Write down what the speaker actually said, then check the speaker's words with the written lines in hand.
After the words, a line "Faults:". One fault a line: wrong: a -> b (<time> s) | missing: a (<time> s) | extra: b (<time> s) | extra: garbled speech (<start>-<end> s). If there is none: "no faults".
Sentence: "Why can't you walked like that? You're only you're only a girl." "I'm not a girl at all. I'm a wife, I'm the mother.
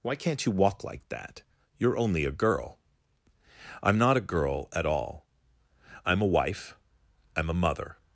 "Why can't you walk like that? You're only a girl." "I'm not a girl at all. I'm a wife, I'm a mother.
Faults:
wrong: walked -> walk (0.5 s)
missing: you're only (2.2 s)
wrong: the -> a (7.5 s)